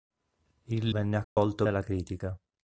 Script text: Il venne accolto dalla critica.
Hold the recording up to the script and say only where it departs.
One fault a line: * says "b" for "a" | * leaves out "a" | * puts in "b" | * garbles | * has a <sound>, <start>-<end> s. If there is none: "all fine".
* has a dropout, 1.2-1.4 s